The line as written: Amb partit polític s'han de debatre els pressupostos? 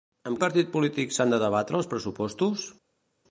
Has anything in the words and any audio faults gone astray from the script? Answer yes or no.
no